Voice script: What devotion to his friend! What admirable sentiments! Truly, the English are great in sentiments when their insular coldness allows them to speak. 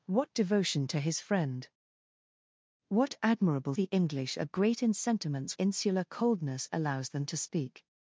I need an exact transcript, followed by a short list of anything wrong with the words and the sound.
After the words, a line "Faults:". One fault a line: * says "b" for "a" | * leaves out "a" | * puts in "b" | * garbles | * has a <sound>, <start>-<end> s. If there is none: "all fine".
What devotion to his friend! What admirable the English are great in sentiments insular coldness allows them to speak.
Faults:
* leaves out "sentiments Truly"
* leaves out "when their"